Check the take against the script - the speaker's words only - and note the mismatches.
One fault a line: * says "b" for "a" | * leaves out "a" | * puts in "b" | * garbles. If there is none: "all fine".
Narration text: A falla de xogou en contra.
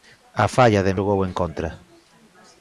all fine